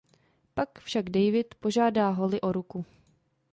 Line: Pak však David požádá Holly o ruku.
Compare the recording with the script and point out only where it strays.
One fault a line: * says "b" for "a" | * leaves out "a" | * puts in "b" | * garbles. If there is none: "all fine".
all fine